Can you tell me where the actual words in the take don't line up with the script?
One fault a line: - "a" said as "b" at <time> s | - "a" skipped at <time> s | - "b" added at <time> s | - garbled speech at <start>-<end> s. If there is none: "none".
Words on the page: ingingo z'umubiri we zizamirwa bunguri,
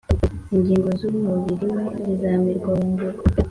none